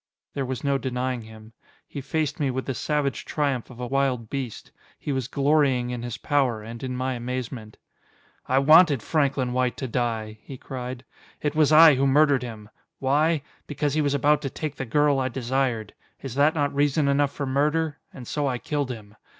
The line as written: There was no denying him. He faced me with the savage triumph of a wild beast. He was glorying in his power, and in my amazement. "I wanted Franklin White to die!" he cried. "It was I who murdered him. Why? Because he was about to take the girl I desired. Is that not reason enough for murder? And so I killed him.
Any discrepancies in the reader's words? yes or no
no